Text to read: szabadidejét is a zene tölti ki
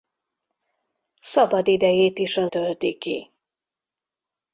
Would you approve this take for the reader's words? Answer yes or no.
no